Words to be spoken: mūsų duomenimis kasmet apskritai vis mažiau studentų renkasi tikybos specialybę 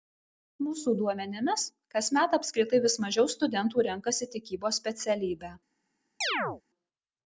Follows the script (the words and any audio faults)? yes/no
no